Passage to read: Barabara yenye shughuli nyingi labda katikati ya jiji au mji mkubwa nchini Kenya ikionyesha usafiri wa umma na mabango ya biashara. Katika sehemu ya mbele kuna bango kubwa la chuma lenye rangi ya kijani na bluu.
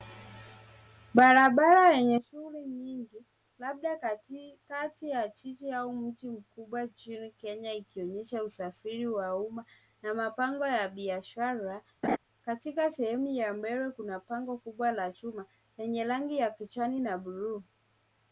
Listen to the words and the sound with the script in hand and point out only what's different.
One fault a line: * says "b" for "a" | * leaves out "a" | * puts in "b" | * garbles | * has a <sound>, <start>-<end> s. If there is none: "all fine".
* has a laugh, 12.0-12.2 s